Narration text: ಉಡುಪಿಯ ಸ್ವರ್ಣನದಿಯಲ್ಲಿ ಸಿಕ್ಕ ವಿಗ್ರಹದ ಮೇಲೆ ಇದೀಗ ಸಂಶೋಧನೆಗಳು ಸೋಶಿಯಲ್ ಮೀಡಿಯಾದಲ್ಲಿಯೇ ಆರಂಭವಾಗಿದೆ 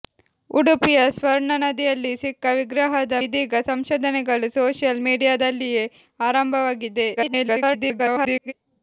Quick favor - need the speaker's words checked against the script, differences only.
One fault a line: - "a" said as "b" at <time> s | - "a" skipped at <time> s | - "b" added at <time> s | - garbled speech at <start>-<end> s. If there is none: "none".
- "ಮೇಲೆ" skipped at 3.2 s
- garbled speech at 7.2-8.5 s